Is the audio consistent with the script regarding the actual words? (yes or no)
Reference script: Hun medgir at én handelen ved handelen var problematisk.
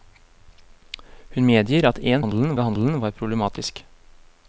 yes